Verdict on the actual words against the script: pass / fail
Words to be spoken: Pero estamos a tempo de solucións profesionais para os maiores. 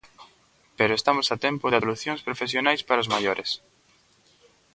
pass